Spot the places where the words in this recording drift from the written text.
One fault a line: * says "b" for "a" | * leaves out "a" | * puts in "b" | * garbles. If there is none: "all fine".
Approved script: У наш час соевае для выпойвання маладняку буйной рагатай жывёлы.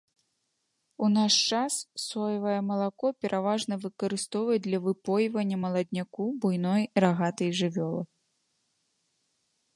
* puts in "малако пераважна выкарыстоўваюць"